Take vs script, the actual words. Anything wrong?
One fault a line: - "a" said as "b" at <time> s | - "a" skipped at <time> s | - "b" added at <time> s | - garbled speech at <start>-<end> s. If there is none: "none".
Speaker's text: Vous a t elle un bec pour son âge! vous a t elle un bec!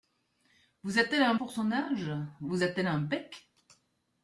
- "bec" skipped at 1.4 s